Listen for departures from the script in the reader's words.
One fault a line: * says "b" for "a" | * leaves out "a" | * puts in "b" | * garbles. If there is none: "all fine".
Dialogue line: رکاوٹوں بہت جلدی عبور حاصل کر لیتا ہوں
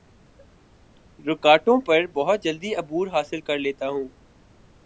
* puts in "پر"